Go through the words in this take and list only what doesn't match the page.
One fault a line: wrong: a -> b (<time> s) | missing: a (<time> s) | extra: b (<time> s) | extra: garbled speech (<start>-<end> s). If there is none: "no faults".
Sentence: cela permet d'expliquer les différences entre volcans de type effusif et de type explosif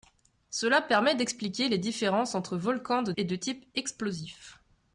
missing: type effusif (3.1 s)